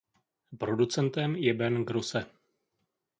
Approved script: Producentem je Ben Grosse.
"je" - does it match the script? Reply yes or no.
yes